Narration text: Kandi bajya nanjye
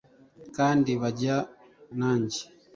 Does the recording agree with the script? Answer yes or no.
yes